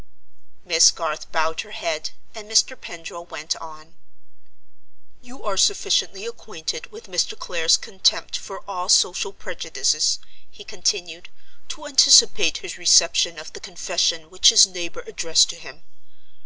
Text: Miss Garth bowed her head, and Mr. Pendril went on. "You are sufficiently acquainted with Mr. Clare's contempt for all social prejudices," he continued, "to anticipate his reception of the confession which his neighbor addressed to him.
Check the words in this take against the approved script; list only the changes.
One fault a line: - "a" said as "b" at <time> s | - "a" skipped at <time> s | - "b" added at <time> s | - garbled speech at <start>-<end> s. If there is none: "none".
none